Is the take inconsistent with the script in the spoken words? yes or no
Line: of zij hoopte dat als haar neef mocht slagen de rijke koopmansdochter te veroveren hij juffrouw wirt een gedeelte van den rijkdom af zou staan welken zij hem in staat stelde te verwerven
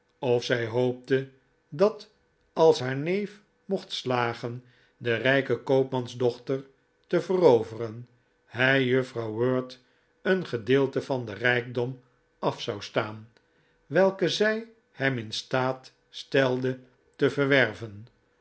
no